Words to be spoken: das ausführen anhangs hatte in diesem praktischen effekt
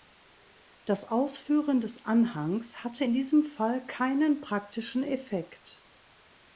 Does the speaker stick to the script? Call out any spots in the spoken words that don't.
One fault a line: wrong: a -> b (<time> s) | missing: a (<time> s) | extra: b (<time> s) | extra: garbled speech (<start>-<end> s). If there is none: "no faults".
extra: des (1.8 s)
extra: fall keinen (3.4 s)